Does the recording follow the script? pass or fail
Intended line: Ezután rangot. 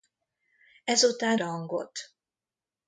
pass